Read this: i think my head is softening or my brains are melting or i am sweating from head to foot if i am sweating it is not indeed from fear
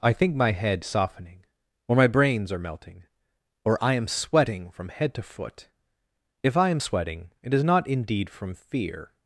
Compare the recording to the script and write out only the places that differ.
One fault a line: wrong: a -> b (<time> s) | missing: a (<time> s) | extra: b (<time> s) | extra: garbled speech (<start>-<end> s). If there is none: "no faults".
missing: is (0.8 s)